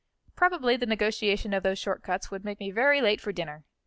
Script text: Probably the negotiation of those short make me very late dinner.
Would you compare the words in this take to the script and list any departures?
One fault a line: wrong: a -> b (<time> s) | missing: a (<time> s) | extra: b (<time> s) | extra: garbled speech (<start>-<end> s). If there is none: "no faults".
extra: cuts would (2.0 s)
extra: for (3.2 s)